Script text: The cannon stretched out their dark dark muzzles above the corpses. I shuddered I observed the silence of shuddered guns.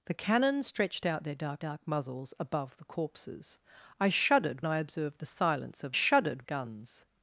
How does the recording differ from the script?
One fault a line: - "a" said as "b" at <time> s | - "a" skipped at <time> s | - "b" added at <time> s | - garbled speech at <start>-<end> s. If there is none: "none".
none